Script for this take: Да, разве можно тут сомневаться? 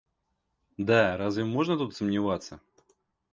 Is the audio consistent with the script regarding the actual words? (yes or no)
yes